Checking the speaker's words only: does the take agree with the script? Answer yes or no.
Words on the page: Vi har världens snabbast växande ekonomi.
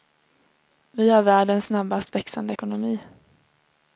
yes